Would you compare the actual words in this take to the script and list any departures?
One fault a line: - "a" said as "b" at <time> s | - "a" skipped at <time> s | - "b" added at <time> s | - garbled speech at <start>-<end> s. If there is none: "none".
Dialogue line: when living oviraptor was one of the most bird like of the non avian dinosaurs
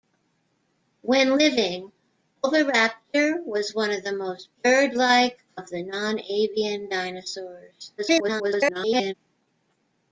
- garbled speech at 8.0-9.1 s